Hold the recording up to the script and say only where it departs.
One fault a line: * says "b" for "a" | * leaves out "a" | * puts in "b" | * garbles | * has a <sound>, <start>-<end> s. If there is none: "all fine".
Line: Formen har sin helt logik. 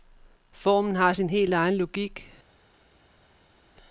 * puts in "egen"